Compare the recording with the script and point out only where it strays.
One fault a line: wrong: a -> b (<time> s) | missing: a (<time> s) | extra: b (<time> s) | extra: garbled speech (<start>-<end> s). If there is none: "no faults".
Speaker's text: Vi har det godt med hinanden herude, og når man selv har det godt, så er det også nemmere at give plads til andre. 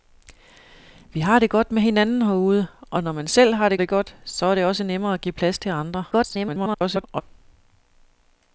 extra: det (3.8 s)
extra: garbled speech (6.1-7.2 s)